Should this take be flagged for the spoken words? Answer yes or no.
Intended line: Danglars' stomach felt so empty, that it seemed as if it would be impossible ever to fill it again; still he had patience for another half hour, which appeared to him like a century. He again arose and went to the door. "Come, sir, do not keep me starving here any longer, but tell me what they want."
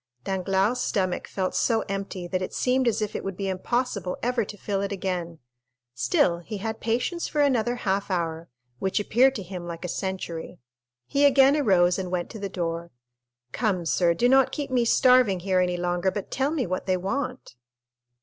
no